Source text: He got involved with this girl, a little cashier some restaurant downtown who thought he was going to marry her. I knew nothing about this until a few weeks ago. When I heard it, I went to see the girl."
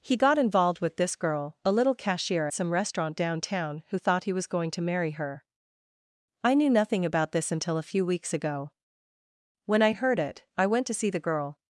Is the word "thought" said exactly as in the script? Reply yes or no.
yes